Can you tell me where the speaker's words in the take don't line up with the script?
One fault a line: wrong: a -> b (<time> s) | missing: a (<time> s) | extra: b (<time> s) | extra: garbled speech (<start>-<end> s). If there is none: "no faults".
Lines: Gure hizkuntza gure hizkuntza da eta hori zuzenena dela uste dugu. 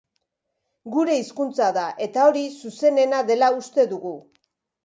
missing: gure hizkuntza (1.7 s)